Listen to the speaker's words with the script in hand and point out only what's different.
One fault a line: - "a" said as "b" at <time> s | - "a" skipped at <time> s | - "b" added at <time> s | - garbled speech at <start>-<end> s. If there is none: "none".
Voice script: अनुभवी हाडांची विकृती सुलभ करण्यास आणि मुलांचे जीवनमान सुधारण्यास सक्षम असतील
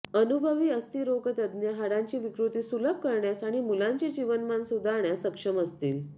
- "अस्थिरोगतज्ञ" added at 0.7 s